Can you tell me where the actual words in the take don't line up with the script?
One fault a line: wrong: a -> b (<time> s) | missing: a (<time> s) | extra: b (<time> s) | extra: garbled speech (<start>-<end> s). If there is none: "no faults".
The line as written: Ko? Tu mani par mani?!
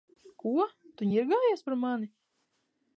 wrong: mani -> ņirgājies (1.1 s)